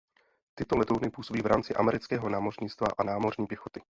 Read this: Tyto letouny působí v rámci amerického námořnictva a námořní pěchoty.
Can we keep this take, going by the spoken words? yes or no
yes